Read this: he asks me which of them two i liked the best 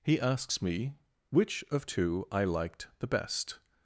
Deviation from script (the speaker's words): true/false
true